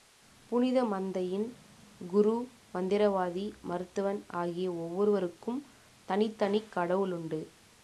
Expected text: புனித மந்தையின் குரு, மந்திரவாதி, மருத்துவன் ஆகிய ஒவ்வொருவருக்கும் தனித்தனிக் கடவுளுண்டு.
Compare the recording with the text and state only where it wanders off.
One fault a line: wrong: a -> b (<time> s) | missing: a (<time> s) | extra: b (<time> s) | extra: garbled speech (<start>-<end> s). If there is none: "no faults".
no faults